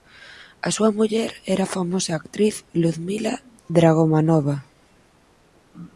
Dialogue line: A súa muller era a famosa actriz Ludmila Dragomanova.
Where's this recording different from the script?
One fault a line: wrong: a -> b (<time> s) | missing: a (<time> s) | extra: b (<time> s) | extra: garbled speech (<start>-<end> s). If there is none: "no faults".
no faults